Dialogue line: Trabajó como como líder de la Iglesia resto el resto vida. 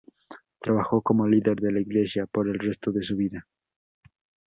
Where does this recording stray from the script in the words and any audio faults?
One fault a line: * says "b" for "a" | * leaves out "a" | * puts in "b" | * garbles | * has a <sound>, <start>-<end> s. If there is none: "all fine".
* leaves out "como"
* says "por" for "resto"
* puts in "de su"